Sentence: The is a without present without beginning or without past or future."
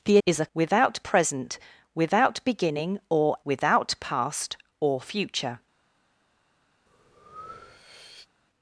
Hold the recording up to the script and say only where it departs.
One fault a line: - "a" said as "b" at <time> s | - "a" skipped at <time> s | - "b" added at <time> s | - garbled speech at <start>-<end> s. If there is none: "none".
none